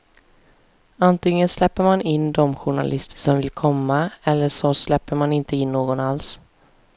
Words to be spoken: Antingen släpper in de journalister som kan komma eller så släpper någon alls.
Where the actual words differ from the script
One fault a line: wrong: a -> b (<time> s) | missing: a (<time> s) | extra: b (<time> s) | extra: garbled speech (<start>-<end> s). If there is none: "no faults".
extra: man (1.8 s)
wrong: kan -> vill (3.4 s)
extra: man inte in (5.2 s)